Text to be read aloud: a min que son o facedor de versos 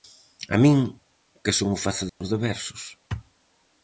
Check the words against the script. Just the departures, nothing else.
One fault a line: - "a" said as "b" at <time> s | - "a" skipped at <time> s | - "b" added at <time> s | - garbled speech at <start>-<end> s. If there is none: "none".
none